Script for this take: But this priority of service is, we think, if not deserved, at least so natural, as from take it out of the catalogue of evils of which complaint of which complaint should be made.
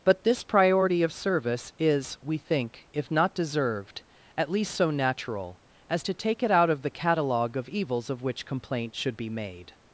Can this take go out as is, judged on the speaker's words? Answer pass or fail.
fail